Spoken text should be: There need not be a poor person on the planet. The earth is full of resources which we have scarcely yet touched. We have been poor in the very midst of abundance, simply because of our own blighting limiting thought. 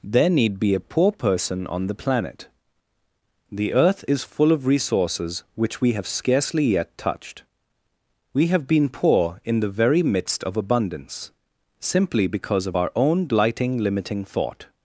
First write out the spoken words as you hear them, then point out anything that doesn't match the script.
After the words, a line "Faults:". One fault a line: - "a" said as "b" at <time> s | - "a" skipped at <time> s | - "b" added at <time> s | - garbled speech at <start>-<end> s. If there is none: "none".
There need be a poor person on the planet. The earth is full of resources which we have scarcely yet touched. We have been poor in the very midst of abundance, simply because of our own blighting limiting thought.
Faults:
- "not" skipped at 0.6 s